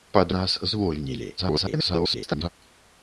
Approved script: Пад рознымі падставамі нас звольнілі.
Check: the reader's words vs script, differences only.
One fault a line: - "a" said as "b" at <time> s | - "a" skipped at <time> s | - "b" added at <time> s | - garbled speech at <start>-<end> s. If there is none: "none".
- "рознымі падставамі" skipped at 0.3 s
- garbled speech at 1.4-2.5 s